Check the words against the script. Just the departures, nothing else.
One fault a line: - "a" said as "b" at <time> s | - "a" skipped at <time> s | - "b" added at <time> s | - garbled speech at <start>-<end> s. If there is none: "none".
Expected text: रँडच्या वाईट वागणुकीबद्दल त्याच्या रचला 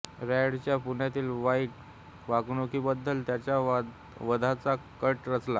- "पुण्यातील" added at 0.8 s
- "वधाचा कट" added at 4.2 s